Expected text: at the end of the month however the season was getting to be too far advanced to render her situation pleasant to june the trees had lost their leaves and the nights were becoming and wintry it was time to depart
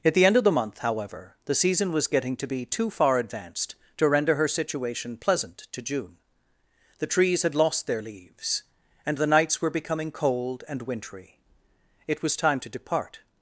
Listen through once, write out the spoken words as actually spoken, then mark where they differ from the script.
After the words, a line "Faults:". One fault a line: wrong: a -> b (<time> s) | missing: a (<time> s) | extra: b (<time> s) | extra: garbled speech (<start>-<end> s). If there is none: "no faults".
at the end of the month however the season was getting to be too far advanced to render her situation pleasant to june the trees had lost their leaves and the nights were becoming cold and wintry it was time to depart
Faults:
extra: cold (10.1 s)